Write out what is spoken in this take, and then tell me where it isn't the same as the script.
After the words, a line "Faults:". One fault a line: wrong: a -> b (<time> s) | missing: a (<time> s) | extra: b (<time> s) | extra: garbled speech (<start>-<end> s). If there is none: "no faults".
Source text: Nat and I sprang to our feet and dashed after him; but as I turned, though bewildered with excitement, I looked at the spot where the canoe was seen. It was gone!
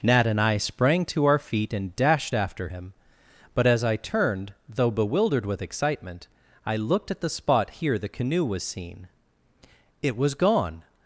Nat and I sprang to our feet and dashed after him; but as I turned, though bewildered with excitement, I looked at the spot here the canoe was seen. It was gone!
Faults:
wrong: where -> here (7.7 s)